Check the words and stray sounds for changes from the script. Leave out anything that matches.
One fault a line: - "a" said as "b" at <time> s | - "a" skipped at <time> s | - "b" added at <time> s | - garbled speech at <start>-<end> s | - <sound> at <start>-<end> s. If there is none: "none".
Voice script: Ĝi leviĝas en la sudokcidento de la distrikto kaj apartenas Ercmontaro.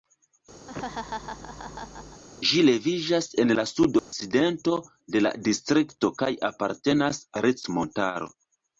- laugh at 0.7-2.2 s
- dropout at 4.0-4.1 s